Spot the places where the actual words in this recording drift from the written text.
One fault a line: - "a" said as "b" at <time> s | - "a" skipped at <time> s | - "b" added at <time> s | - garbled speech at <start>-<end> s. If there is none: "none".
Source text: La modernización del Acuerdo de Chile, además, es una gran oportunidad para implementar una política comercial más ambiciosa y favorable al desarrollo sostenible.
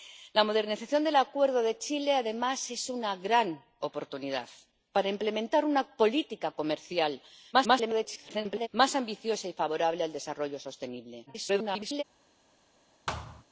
- garbled speech at 7.5-8.7 s
- garbled speech at 11.3-12.0 s